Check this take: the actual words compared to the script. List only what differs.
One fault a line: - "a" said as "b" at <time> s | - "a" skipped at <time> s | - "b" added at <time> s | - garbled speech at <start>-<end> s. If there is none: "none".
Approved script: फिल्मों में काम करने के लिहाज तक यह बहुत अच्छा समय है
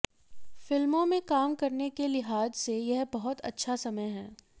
- "तक" said as "से" at 2.6 s